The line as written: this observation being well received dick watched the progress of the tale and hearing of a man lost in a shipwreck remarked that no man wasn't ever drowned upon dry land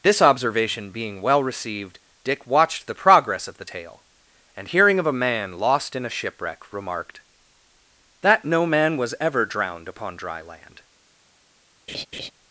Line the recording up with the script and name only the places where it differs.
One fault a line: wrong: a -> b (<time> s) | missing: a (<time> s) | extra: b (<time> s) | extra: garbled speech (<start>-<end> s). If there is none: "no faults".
wrong: wasn't -> was (9.0 s)